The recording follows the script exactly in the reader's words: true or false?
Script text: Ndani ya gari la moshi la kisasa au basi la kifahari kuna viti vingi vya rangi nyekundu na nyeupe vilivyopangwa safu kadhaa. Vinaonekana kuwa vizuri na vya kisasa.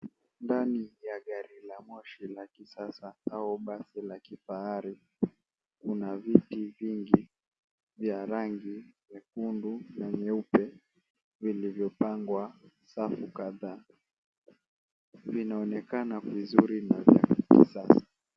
false